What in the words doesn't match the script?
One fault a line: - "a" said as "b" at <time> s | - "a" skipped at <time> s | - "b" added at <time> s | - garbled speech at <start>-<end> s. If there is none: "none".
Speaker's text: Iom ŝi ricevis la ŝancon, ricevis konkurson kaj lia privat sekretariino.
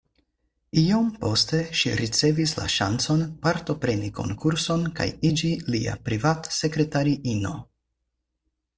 - "poste" added at 1.2 s
- "ricevis" said as "partopreni" at 3.5 s
- "iĝi" added at 5.3 s